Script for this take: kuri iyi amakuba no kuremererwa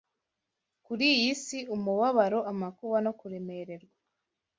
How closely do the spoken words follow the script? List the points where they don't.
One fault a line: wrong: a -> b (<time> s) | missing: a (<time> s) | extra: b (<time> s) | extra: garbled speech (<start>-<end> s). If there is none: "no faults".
extra: si umubabaro (1.4 s)